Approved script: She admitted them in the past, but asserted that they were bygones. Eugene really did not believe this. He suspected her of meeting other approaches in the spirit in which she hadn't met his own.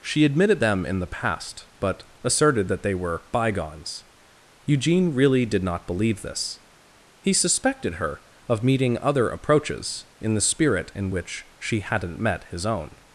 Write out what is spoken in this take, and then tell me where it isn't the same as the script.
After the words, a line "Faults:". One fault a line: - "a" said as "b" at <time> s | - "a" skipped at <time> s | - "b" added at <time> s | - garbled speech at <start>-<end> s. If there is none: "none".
She admitted them in the past, but asserted that they were bygones. Eugene really did not believe this. He suspected her of meeting other approaches in the spirit in which she hadn't met his own.
Faults:
none